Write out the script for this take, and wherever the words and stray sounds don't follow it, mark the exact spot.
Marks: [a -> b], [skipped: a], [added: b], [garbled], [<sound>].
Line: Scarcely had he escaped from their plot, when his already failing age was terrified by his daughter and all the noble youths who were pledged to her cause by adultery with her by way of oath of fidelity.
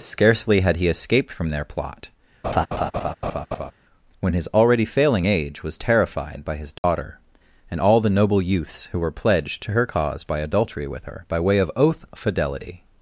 Scarcely had he escaped from their plot, [laugh] when his already failing age was terrified by his daughter [dropout] and all the noble youths who were pledged to her cause by adultery with her by way of oath [skipped: of] fidelity.